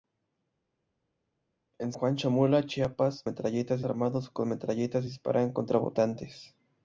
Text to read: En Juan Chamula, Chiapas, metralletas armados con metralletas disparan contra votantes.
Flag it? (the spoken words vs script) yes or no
no